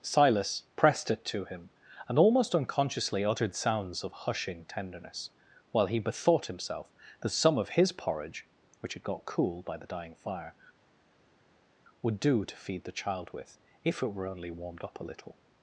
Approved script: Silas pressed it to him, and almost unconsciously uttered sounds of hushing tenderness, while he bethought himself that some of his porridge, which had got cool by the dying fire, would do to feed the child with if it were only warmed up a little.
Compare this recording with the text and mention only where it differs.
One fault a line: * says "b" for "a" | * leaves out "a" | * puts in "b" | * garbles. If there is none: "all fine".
all fine